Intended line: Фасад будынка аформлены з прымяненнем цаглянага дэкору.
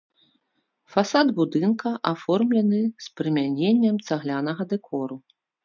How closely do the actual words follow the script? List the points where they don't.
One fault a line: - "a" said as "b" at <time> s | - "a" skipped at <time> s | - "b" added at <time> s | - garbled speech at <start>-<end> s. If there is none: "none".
none